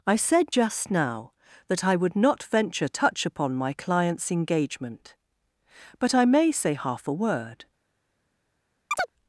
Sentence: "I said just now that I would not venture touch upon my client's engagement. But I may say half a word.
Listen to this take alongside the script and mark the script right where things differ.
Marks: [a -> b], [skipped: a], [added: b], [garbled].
"I said just now that I would not venture touch upon my client's engagement. But I may say half a word.